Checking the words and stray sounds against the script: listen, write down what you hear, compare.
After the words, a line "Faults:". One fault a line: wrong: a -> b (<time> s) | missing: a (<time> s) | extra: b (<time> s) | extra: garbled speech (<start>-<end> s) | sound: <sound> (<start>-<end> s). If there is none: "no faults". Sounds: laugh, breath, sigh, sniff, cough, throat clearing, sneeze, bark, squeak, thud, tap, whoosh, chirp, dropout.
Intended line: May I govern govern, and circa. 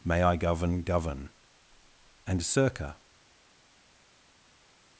May I govern govern, and circa.
Faults:
no faults